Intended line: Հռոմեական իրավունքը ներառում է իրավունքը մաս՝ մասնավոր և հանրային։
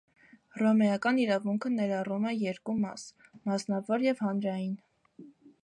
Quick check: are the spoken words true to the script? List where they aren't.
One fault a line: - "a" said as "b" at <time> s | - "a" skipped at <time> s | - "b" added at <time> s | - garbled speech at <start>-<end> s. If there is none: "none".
- "իրավունքը" said as "երկու" at 2.5 s